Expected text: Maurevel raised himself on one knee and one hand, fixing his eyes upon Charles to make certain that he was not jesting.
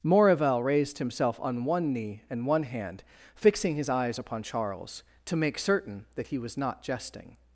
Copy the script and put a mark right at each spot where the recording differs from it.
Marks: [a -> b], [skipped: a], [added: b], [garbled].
Maurevel raised himself on one knee and one hand, fixing his eyes upon Charles to make certain that he was not jesting.